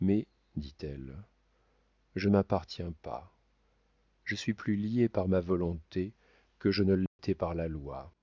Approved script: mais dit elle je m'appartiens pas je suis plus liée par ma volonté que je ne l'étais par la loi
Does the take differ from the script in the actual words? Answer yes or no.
no